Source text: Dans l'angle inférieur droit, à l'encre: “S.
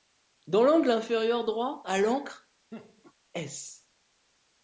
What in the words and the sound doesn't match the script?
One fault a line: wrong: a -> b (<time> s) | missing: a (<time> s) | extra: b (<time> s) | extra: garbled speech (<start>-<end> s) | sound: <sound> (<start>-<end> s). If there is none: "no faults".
sound: laugh (2.7-3.1 s)